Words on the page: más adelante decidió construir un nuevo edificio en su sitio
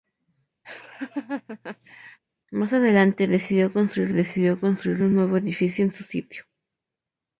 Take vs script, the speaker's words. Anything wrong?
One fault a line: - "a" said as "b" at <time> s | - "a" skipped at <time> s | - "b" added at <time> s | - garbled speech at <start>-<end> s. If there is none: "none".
- "decidió construir" added at 4.1 s